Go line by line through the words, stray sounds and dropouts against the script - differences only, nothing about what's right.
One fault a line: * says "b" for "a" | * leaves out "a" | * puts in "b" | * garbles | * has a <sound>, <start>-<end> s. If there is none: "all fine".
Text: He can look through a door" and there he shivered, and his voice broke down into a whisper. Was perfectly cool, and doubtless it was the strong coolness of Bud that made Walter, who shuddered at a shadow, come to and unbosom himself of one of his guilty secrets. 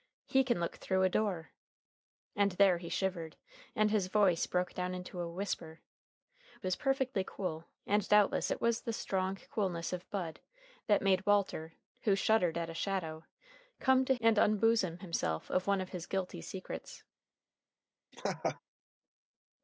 * has a laugh, 18.1-18.6 s